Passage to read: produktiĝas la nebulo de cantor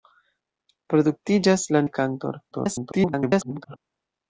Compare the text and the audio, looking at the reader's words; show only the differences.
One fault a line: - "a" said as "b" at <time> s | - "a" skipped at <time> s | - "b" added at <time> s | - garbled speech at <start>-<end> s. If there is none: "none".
- "nebulo" skipped at 1.9 s
- garbled speech at 2.5-3.8 s